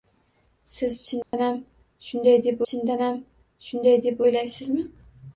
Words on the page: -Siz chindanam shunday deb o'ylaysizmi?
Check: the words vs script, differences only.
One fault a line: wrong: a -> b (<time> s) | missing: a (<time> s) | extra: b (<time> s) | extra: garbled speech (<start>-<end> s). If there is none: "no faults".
extra: chindanam shunday deb (2.7 s)